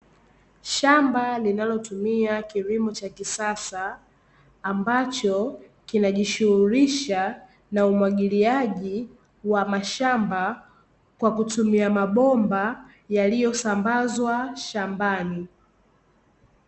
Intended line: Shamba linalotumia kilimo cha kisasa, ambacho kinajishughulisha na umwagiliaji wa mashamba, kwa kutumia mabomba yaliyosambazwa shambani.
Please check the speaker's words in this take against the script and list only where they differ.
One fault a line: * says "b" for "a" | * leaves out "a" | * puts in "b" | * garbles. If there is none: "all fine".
all fine